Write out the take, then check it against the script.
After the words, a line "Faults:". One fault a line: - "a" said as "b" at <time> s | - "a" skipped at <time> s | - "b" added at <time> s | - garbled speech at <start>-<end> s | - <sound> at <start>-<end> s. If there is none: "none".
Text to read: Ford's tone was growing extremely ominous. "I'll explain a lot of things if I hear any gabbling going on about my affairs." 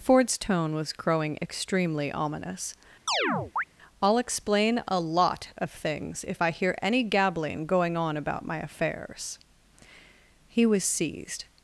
Ford's tone was growing extremely ominous. "I'll explain a lot of things if I hear any gabbling going on about my affairs." He was seized
Faults:
- chirp at 3.1-3.6 s
- "He was seized" added at 10.5 s